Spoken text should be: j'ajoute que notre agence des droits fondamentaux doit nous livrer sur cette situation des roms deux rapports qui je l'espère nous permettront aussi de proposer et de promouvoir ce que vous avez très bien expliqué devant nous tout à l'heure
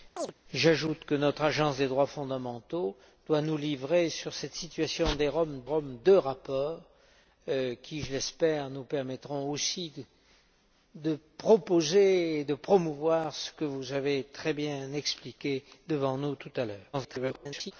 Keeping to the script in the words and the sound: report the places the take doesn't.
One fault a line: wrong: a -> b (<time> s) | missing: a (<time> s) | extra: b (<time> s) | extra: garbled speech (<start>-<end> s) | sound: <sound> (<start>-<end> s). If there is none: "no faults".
sound: chirp (0.2-0.3 s)
extra: roms (5.6 s)
extra: garbled speech (16.9-17.7 s)